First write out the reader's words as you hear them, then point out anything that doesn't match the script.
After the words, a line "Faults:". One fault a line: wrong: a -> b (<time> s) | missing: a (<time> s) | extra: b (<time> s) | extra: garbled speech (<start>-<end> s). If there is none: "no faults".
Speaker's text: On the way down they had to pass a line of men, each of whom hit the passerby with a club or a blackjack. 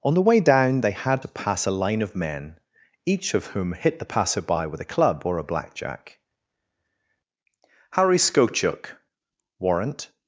On the way down they had to pass a line of men, each of whom hit the passerby with a club or a blackjack. Harry Skochuk (Warrant
Faults:
extra: Harry Skochuk Warrant (7.9 s)